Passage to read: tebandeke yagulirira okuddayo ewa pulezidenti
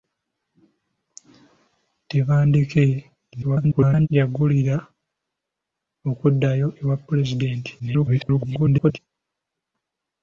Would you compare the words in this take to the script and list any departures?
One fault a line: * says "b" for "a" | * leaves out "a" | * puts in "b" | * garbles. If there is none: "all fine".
* garbles
* garbles